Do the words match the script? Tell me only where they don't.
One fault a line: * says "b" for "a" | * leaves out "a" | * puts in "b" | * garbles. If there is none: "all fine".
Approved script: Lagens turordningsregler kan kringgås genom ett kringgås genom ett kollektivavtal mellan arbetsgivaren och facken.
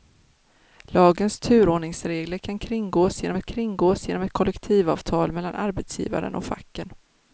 all fine